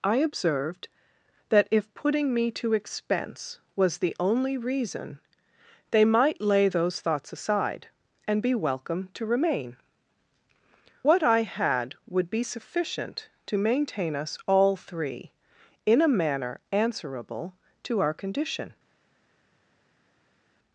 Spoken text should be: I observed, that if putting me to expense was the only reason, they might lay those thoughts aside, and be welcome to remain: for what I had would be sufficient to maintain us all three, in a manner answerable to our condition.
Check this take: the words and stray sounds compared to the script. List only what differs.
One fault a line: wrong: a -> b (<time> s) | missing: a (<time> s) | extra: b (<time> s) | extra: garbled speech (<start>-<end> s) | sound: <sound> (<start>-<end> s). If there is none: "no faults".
missing: for (9.8 s)